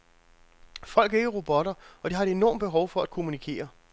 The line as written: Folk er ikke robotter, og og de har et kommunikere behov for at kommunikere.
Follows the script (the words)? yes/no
no